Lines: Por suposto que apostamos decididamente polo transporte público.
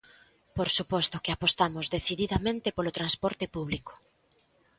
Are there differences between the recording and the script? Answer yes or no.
no